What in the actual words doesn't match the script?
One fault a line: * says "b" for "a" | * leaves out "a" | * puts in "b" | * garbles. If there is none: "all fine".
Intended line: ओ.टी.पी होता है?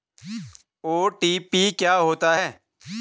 * puts in "क्या"